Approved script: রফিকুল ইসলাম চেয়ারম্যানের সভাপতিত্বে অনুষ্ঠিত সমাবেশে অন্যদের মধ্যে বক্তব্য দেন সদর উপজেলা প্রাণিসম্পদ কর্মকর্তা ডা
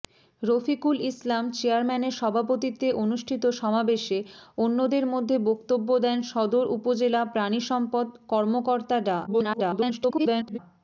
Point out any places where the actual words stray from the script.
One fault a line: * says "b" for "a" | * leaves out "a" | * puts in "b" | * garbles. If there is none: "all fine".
* garbles